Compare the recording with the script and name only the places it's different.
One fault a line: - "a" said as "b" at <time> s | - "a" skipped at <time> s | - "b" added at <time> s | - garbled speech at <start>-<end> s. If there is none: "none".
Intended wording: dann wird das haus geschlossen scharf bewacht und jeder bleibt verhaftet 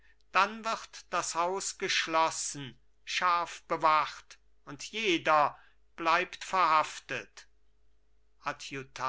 none